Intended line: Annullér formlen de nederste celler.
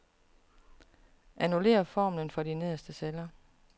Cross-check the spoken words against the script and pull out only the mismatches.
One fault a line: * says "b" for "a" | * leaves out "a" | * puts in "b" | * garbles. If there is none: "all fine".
* puts in "for"